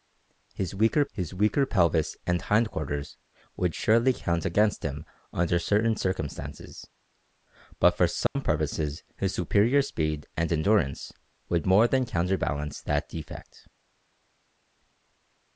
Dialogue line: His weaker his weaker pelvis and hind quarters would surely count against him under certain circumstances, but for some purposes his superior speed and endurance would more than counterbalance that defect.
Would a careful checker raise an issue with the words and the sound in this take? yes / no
yes